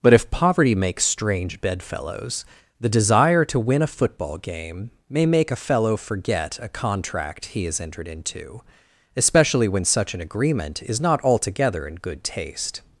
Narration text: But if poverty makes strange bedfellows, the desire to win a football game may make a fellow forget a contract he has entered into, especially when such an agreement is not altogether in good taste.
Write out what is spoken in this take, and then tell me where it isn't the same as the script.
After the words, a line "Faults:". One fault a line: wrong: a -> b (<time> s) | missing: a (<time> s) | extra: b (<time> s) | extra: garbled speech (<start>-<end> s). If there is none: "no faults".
But if poverty makes strange bedfellows, the desire to win a football game may make a fellow forget a contract he has entered into, especially when such an agreement is not altogether in good taste.
Faults:
no faults